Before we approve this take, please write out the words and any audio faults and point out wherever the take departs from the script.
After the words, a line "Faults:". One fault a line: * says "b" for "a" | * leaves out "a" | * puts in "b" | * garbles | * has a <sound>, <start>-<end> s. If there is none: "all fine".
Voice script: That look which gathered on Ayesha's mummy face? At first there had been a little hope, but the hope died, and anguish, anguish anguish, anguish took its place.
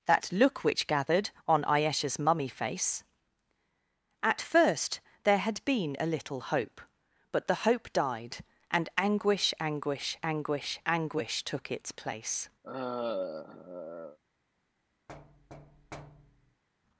That look which gathered on Ayesha's mummy face? At first there had been a little hope, but the hope died, and anguish, anguish anguish, anguish took its place.
Faults:
* has a sigh, 12.6-14.2 s
* has a thud, 15.1-16.6 s